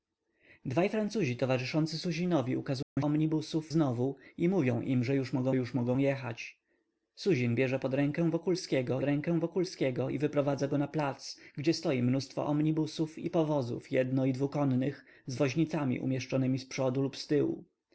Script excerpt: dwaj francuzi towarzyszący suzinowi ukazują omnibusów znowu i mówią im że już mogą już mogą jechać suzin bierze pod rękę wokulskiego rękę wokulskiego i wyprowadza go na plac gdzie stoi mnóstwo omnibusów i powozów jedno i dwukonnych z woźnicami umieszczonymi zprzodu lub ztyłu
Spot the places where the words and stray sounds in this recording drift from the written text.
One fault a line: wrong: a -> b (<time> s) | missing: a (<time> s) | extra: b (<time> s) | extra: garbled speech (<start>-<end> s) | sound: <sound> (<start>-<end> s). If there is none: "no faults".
sound: dropout (2.8-3.0 s)